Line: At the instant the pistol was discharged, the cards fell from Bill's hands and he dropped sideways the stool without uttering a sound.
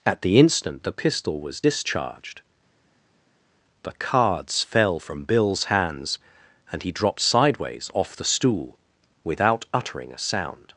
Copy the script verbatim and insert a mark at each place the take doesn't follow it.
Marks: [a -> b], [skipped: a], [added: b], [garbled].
At the instant the pistol was discharged, the cards fell from Bill's hands and he dropped sideways [added: off] the stool without uttering a sound.